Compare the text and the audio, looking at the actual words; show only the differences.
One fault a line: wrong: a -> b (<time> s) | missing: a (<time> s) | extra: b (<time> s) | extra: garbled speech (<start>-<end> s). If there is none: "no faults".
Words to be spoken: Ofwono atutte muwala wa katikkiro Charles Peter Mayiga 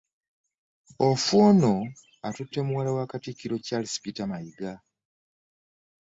no faults